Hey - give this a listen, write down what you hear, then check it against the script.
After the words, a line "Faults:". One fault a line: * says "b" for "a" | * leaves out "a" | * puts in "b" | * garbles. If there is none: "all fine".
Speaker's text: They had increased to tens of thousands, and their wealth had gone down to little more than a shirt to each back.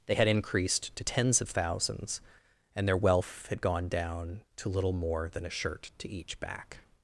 They had increased to tens of thousands, and their wealth had gone down to little more than a shirt to each back.
Faults:
all fine